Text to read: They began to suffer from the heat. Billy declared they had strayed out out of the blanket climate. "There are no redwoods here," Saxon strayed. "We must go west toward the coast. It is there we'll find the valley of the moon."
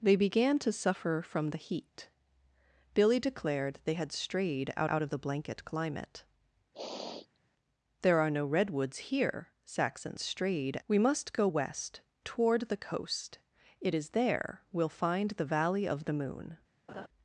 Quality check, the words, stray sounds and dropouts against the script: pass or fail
fail